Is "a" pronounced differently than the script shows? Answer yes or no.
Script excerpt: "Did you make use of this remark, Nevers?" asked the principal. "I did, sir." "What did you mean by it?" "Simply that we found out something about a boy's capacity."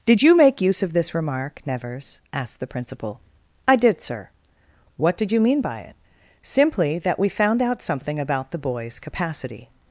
yes